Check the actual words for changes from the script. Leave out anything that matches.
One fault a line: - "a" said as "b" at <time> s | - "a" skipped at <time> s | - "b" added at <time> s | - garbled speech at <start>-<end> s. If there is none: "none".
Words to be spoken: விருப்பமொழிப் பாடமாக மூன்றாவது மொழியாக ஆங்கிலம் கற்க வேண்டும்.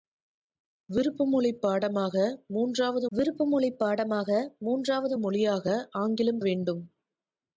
- "விருப்பமொழிப் பாடமாக மூன்றாவது" added at 3.1 s
- "கற்க" skipped at 6.4 s